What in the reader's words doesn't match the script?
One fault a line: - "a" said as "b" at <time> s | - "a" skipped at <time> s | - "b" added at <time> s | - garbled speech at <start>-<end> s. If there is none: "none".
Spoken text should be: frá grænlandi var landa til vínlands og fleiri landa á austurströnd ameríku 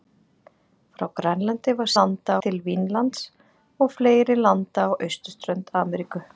none